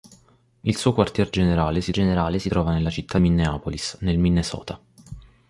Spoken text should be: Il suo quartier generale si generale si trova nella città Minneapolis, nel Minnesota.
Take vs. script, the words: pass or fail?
pass